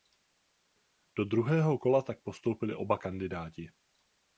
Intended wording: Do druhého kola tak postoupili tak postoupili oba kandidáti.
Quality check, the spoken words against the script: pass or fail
fail